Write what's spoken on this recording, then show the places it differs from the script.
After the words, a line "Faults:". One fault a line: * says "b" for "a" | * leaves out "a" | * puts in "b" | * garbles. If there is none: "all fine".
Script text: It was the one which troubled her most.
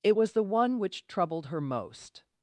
It was the one which troubled her most.
Faults:
all fine